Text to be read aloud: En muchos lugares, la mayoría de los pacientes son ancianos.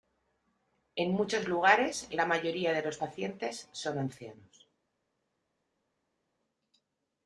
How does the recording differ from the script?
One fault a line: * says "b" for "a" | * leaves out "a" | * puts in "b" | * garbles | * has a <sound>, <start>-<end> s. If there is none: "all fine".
all fine